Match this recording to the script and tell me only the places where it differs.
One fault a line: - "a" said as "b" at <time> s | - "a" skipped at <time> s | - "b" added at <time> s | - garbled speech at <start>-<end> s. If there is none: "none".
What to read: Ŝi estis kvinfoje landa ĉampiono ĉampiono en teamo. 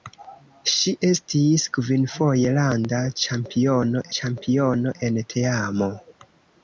none